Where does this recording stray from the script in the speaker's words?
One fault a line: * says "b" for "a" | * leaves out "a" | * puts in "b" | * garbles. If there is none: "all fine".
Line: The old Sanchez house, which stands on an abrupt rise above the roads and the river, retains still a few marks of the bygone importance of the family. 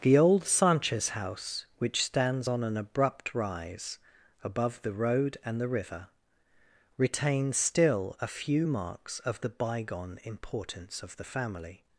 * says "road" for "roads"